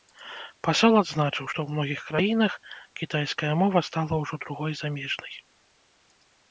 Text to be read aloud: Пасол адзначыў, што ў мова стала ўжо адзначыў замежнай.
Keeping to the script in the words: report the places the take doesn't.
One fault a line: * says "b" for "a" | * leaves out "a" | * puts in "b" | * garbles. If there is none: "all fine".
* puts in "многіх краінах кітайская"
* says "другой" for "адзначыў"